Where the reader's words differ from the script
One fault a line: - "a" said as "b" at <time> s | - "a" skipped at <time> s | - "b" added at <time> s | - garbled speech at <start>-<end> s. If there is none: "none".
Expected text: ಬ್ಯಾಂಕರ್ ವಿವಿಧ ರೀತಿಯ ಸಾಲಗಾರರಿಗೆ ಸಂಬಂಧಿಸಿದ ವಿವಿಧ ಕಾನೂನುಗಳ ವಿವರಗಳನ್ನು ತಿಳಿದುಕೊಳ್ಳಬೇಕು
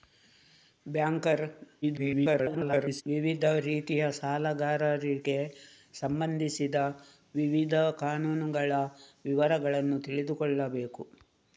- garbled speech at 1.8-3.0 s